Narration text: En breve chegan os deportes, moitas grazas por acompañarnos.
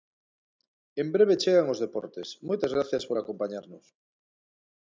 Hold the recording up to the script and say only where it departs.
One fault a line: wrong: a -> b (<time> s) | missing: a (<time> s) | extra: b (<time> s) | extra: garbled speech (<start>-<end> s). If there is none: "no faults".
no faults